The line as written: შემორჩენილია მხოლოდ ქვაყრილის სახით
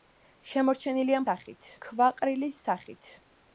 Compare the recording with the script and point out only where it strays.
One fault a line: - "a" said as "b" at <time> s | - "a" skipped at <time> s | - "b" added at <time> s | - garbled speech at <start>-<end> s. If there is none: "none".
- "მხოლოდ" said as "სახით" at 1.3 s